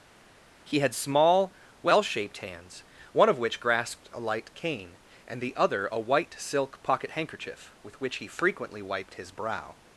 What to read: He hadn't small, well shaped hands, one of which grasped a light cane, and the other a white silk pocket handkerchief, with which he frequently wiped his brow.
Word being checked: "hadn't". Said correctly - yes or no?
no